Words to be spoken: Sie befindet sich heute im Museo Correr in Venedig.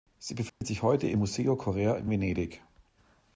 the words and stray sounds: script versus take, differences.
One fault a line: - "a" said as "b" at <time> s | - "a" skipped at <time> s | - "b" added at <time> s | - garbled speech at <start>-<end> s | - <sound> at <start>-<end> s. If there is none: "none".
- dropout at 0.5-0.6 s